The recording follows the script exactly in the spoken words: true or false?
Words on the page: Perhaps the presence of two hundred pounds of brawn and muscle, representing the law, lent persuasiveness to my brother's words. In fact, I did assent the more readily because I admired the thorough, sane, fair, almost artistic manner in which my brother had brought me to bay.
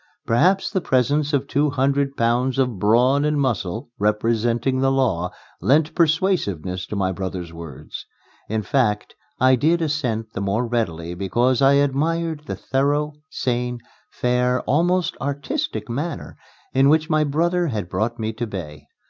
true